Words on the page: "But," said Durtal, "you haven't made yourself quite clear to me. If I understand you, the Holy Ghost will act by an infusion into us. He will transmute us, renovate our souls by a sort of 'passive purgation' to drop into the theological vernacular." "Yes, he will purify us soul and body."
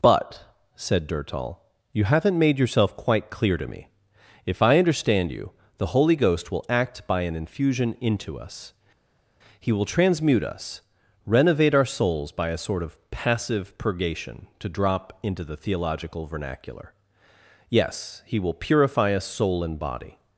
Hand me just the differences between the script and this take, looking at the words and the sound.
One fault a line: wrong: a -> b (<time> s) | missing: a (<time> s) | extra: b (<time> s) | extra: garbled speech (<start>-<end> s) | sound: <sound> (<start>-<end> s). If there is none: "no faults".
no faults